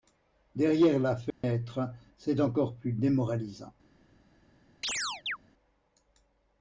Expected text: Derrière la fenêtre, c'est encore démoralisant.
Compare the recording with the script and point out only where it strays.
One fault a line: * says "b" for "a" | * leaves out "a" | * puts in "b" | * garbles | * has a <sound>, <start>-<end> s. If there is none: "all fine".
* has a dropout, 1.3-1.4 s
* puts in "plus"
* has a chirp, 4.8-5.4 s